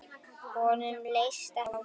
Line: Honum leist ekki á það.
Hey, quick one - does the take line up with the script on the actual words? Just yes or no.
no